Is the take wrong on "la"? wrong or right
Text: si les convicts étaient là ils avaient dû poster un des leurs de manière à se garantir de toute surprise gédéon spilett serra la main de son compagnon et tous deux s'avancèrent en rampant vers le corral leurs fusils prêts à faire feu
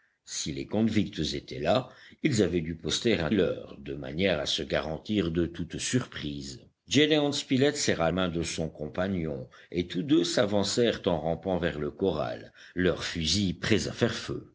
wrong